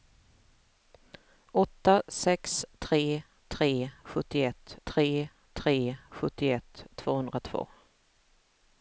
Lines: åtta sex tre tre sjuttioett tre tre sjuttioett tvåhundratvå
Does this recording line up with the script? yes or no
yes